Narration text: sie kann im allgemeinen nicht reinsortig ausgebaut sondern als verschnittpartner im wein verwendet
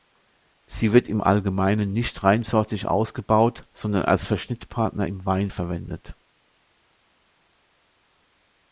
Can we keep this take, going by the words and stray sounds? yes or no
no